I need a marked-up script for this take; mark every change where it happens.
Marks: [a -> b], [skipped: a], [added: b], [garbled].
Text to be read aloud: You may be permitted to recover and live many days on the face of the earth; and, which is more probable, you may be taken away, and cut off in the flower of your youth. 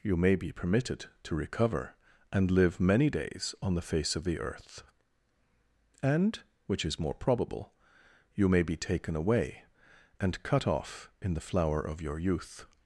You may be permitted to recover and live many days on the face of the earth; and, which is more probable, you may be taken away, and cut off in the flower of your youth.